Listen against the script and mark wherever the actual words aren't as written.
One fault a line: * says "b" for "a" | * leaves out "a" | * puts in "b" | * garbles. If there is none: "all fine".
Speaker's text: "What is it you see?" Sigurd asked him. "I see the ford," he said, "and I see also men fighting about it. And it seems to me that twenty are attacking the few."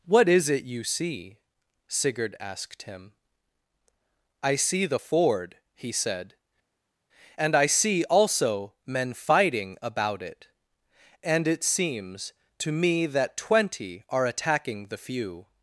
all fine